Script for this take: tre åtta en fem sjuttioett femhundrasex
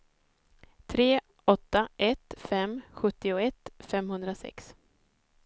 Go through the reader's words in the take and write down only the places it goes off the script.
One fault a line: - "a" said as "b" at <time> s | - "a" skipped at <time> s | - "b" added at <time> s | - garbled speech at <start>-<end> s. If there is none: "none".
- "en" said as "ett" at 2.0 s